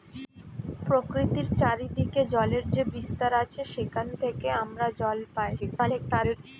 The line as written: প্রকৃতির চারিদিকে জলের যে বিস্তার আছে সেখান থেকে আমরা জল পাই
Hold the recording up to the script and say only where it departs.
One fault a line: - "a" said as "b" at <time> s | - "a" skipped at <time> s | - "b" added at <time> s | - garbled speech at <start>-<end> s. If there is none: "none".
- garbled speech at 5.6-6.4 s